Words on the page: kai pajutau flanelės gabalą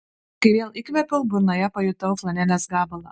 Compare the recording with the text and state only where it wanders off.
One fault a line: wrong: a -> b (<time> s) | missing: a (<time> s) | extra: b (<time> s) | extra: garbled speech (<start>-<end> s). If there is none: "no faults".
extra: vėl įkvėpiau burnoje (0.5 s)